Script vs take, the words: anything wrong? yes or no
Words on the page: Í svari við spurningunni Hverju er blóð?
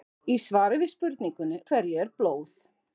no